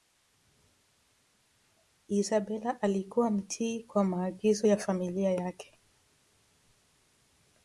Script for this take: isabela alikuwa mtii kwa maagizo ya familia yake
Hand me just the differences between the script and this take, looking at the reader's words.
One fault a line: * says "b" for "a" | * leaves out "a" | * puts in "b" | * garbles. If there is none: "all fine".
all fine